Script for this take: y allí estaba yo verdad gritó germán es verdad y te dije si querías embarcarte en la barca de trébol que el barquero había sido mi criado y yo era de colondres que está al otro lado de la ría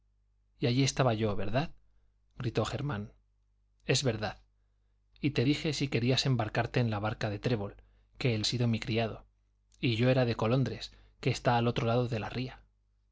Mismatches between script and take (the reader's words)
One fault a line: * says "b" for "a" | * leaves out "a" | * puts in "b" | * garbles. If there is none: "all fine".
* leaves out "barquero había"